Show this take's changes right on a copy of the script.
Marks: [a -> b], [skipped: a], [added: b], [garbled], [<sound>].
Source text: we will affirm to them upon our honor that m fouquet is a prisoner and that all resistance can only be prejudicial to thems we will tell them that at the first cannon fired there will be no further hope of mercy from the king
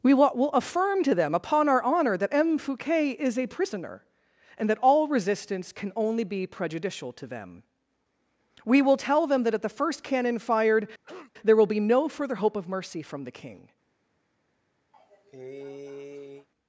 we will affirm to them upon our honor that m fouquet is a prisoner and that all resistance can only be prejudicial to [thems -> them] we will tell them that at the first cannon fired [cough] there will be no further hope of mercy from the king [cough]